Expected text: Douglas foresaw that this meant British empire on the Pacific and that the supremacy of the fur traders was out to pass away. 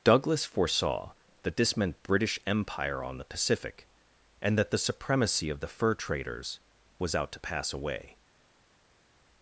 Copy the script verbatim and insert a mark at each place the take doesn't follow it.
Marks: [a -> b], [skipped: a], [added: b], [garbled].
Douglas foresaw that this meant British empire on the Pacific and that the supremacy of the fur traders was out to pass away.